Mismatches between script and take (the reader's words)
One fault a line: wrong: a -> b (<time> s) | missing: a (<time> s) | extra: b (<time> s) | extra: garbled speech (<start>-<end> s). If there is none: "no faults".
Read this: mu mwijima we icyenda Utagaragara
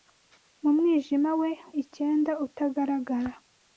no faults